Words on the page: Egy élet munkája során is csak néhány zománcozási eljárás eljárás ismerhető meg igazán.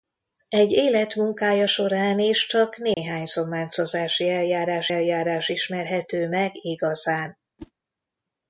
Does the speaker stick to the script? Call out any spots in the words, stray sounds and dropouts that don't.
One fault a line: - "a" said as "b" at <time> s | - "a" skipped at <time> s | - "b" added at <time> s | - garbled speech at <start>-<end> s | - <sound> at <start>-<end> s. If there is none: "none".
- dropout at 2.9-3.0 s
- whoosh at 7.6-7.7 s